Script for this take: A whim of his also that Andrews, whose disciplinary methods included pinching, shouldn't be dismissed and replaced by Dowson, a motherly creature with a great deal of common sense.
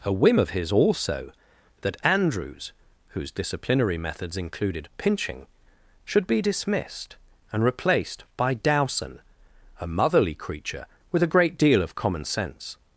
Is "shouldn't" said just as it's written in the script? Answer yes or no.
no